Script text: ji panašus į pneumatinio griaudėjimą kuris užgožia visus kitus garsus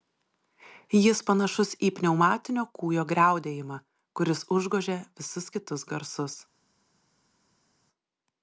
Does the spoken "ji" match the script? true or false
false